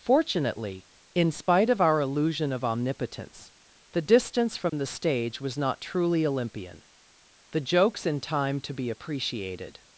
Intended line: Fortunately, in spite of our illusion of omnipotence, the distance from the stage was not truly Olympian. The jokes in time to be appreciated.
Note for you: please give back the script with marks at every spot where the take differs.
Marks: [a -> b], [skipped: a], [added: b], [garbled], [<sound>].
Fortunately, in spite of our illusion of omnipotence, the distance from [dropout] the stage was not truly Olympian. The jokes in time to be appreciated.